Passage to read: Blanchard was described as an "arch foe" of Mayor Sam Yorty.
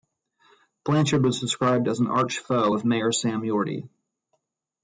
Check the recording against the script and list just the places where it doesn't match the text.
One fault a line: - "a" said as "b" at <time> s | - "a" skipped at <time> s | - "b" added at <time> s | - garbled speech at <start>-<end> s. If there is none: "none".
none